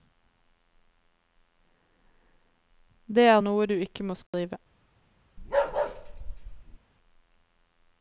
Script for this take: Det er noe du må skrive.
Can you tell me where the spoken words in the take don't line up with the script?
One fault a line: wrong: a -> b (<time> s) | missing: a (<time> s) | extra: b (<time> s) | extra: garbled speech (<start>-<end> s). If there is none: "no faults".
extra: ikke (3.8 s)